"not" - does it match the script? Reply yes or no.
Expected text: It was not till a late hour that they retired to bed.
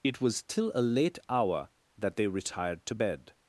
no